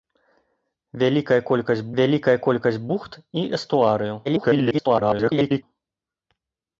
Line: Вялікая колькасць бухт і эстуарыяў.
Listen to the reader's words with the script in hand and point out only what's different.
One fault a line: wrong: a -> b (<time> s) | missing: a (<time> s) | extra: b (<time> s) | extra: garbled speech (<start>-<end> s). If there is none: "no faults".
extra: вялікая колькасць (2.0 s)
extra: garbled speech (4.2-5.6 s)